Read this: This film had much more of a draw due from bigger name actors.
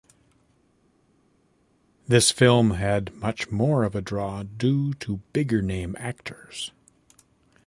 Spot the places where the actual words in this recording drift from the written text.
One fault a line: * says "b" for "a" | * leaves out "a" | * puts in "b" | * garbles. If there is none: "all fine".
* says "to" for "from"